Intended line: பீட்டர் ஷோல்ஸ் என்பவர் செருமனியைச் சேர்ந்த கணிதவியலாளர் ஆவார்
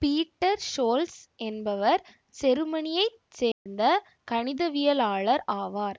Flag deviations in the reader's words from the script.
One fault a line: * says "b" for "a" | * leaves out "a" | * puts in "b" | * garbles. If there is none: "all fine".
all fine